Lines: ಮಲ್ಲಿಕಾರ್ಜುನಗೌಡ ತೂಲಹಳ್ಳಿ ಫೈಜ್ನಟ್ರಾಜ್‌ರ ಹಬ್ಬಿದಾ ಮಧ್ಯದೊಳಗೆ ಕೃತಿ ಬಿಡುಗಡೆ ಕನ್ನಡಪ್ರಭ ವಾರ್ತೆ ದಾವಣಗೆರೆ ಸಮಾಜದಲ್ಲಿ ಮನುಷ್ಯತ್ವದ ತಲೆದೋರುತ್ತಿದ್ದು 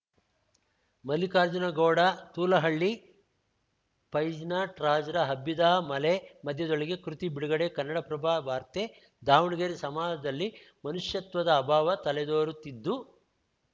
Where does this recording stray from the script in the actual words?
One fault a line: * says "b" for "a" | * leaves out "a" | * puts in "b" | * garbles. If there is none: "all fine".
* puts in "ಮಲೆ"
* puts in "ಅಭಾವ"